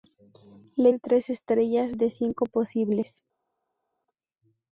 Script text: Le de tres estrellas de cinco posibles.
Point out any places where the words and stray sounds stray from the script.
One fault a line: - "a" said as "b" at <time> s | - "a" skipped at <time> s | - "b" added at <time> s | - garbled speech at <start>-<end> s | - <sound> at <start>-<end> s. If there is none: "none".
none